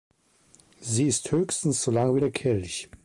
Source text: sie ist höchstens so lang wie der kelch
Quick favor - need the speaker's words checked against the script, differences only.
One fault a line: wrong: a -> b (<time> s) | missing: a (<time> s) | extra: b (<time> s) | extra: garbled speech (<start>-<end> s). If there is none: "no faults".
no faults